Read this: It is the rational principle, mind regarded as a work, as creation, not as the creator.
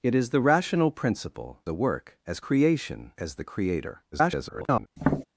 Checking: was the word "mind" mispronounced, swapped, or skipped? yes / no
yes